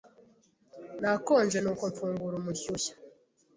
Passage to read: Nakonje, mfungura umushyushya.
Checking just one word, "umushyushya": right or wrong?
right